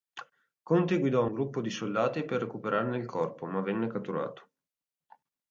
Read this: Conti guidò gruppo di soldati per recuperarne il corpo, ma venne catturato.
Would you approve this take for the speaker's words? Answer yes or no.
yes